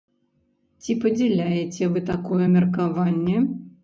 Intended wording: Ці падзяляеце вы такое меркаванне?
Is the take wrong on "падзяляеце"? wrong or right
right